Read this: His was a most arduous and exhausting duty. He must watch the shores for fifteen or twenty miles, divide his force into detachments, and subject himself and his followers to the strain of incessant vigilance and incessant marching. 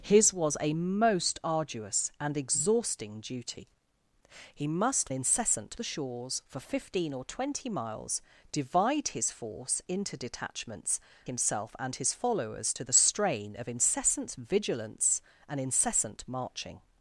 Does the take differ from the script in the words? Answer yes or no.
yes